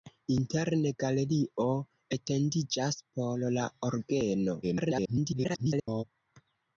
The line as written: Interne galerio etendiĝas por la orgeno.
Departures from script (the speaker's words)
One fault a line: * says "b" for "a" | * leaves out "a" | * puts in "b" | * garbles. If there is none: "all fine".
* garbles